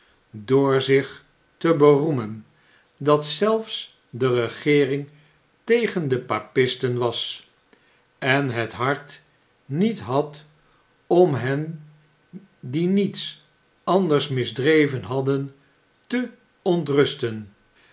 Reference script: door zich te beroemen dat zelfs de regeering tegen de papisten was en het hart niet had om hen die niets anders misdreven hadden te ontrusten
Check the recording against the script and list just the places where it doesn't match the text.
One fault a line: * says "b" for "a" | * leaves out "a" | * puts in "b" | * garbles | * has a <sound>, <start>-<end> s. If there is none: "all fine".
all fine